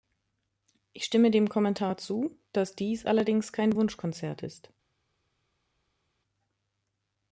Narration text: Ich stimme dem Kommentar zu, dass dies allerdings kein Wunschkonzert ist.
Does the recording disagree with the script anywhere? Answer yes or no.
no